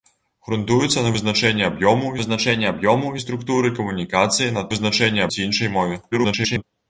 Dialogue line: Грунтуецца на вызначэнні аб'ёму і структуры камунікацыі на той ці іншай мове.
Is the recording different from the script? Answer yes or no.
yes